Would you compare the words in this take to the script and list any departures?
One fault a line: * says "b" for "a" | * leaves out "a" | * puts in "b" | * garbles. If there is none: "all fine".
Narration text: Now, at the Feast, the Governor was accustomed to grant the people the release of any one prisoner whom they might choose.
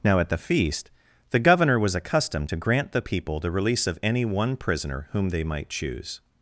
all fine